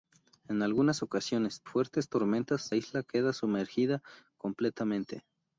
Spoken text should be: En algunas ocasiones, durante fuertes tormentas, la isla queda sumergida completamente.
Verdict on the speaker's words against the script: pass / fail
fail